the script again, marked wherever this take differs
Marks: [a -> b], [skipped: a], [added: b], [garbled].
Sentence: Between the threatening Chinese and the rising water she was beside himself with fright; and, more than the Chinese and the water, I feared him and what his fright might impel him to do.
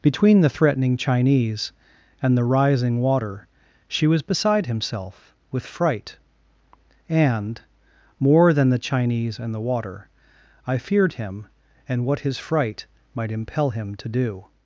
Between the threatening Chinese and the rising water she was beside himself with fright; and, more than the Chinese and the water, I feared him and what his fright might impel him to do.